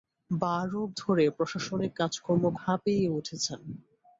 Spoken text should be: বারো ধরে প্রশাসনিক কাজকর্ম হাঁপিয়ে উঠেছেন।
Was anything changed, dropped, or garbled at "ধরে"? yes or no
no